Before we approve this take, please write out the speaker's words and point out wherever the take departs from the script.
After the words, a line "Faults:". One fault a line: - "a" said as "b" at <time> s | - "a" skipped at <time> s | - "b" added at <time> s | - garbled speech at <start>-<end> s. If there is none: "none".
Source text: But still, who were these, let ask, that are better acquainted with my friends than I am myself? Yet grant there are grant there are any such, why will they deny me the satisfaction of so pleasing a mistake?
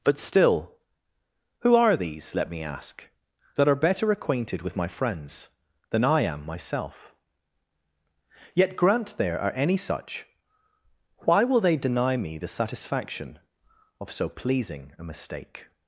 But still, who are these, let me ask, that are better acquainted with my friends than I am myself? Yet grant there are any such, why will they deny me the satisfaction of so pleasing a mistake?
Faults:
- "were" said as "are" at 1.8 s
- "me" added at 2.5 s
- "grant there are" skipped at 9.5 s